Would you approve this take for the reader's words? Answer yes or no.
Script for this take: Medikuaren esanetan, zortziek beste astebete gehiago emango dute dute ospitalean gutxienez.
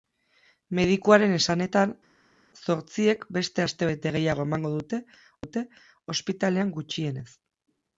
yes